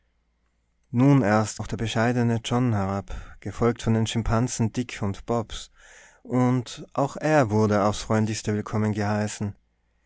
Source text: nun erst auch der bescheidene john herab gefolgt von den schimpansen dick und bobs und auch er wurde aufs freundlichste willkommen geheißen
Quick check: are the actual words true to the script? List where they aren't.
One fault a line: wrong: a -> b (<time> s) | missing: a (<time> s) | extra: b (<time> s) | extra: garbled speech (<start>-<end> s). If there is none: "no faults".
no faults